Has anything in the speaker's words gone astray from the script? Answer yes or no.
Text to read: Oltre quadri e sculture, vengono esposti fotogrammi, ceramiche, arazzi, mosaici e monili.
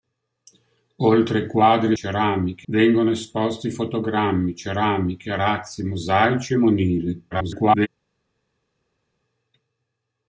yes